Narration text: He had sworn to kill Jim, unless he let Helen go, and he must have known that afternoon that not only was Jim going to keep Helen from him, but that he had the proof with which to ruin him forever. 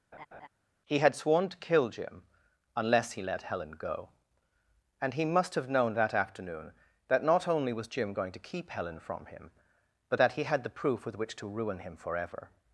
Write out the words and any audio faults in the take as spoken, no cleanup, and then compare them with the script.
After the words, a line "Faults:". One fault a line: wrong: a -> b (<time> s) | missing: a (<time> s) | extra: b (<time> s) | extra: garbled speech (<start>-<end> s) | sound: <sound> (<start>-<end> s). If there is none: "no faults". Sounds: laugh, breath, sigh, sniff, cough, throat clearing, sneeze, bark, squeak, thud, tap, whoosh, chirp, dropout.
He had sworn to kill Jim, unless he let Helen go, and he must have known that afternoon that not only was Jim going to keep Helen from him, but that he had the proof with which to ruin him forever.
Faults:
sound: laugh (0.1-0.5 s)